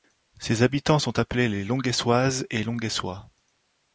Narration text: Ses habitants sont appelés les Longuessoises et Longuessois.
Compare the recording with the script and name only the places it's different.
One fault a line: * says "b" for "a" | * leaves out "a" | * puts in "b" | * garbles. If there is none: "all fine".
all fine